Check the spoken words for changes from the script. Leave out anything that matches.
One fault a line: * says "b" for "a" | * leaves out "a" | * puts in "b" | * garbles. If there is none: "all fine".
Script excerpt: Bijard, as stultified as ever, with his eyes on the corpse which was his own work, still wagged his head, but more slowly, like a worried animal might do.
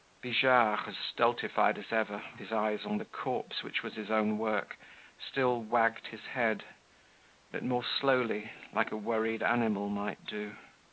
* leaves out "with"